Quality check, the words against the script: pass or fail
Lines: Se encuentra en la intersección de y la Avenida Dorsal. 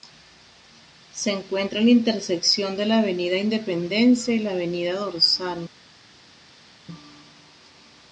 fail